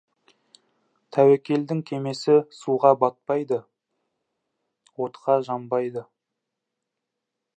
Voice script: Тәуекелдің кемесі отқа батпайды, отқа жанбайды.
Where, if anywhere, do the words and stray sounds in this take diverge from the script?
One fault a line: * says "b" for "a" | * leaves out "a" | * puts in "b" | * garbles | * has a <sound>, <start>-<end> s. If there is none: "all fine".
* says "суға" for "отқа"